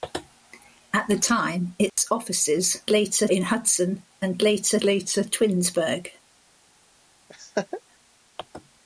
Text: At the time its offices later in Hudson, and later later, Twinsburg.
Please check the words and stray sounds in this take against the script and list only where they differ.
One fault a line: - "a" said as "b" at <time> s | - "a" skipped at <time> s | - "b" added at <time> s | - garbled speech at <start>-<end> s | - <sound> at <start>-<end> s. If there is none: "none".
- dropout at 1.9-2.0 s
- laugh at 7.3-7.8 s